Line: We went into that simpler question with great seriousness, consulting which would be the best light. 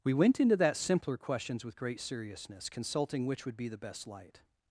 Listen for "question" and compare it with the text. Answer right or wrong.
wrong